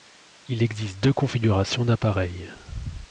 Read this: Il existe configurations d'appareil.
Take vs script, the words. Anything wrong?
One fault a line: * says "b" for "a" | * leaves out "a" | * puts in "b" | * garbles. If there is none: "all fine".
* puts in "deux"